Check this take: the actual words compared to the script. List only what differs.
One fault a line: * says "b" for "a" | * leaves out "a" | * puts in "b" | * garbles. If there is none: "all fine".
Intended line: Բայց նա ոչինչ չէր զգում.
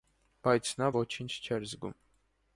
all fine